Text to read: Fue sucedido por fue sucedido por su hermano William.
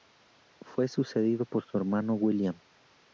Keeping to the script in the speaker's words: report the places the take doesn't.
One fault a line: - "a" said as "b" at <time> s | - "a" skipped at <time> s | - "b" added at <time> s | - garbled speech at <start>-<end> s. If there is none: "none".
- "fue sucedido por" skipped at 1.6 s